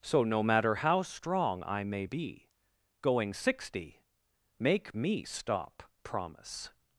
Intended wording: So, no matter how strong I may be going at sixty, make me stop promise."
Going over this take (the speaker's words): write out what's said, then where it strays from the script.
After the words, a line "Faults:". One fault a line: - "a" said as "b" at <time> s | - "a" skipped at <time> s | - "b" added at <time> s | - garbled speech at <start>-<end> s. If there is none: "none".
So, no matter how strong I may be going sixty, make me stop promise."
Faults:
- "at" skipped at 3.3 s